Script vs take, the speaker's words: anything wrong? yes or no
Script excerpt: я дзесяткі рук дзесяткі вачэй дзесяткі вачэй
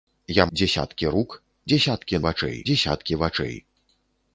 no